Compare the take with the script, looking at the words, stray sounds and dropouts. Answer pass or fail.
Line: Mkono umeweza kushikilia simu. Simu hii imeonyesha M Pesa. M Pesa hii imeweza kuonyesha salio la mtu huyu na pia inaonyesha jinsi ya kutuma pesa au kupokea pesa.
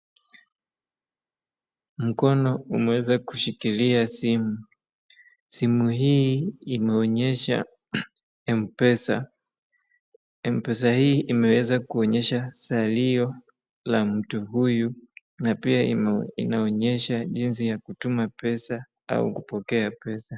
pass